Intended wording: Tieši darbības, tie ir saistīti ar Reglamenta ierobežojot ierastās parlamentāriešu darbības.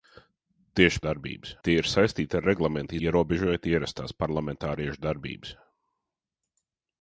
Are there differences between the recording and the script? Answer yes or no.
no